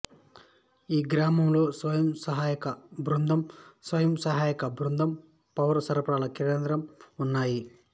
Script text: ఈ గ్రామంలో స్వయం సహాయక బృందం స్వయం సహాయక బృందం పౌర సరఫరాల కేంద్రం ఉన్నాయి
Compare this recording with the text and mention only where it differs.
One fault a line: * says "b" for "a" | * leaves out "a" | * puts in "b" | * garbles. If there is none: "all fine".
all fine